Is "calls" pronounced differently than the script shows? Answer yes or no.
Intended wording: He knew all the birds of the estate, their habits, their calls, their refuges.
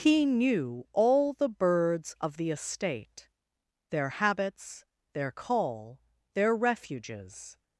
yes